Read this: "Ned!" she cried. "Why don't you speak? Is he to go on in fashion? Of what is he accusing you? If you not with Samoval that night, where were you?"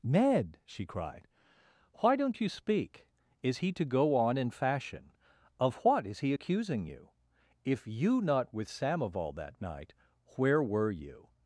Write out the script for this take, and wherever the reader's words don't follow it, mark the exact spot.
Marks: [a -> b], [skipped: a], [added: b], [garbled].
"Ned!" she cried. "Why don't you speak? Is he to go on in fashion? Of what is he accusing you? If you not with Samoval that night, where were you?"